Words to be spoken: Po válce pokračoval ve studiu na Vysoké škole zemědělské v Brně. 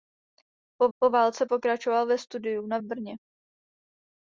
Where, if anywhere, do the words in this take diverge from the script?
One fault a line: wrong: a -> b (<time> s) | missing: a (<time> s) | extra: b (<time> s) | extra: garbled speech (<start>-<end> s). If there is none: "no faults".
extra: po (1.0 s)
missing: Vysoké škole zemědělské (2.8 s)